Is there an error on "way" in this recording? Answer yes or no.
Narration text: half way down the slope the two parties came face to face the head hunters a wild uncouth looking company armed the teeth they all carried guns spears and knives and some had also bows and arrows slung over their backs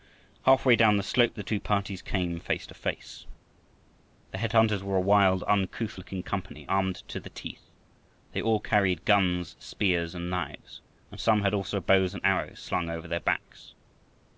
no